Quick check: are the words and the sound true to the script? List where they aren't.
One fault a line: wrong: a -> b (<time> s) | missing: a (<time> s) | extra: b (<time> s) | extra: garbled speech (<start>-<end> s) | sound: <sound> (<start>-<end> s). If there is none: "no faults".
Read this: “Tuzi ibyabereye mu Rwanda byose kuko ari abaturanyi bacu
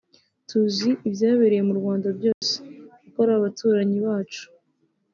sound: dropout (2.3-2.4 s)